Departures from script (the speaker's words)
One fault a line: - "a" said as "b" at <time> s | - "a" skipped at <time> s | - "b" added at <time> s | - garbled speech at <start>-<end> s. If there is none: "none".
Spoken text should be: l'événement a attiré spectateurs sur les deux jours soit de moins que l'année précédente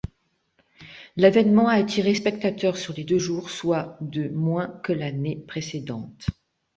none